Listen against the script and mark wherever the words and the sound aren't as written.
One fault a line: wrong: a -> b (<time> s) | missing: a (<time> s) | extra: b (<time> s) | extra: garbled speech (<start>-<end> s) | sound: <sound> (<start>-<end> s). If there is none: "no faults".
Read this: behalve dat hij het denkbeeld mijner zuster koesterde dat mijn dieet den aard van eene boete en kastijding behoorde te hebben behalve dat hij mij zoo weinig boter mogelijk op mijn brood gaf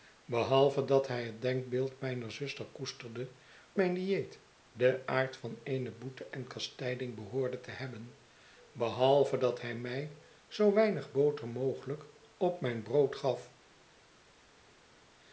missing: dat (3.3 s)